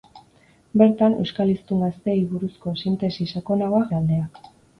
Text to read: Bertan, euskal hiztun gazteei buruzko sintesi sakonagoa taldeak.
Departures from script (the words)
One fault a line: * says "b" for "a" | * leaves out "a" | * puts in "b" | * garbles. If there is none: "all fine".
all fine